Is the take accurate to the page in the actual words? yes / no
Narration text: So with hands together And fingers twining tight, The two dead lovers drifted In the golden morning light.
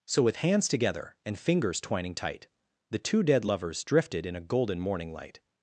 no